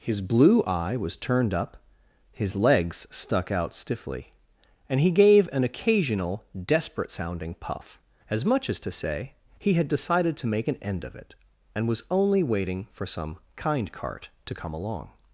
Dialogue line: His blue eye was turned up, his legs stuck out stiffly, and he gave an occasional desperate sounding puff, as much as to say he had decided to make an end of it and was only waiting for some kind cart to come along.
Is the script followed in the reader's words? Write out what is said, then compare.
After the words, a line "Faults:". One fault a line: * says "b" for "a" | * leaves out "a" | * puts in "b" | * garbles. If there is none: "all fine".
His blue eye was turned up, his legs stuck out stiffly, and he gave an occasional desperate sounding puff, as much as to say he had decided to make an end of it and was only waiting for some kind cart to come along.
Faults:
all fine